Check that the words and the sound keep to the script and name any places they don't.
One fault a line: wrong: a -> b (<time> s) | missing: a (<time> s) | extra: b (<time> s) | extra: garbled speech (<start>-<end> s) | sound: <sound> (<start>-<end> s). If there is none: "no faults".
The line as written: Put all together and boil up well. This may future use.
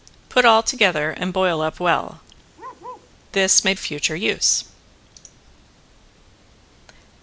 sound: bark (2.5-3.1 s)